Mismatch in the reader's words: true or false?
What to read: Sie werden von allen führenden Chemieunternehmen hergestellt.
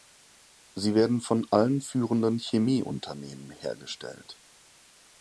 false